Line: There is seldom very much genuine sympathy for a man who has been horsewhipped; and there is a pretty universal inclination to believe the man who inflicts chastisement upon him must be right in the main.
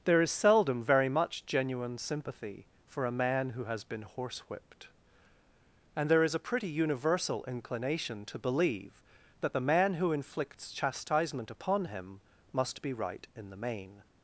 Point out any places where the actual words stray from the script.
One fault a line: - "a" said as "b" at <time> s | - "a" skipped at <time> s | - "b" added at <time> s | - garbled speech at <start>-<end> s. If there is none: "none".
- "that" added at 9.4 s